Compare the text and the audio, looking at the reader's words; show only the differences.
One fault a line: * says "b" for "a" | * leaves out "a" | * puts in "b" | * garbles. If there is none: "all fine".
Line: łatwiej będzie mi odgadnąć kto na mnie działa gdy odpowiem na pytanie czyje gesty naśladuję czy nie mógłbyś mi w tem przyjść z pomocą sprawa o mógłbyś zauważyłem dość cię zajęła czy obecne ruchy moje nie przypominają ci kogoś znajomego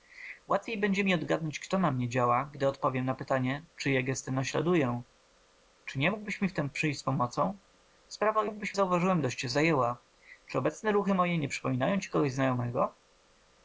all fine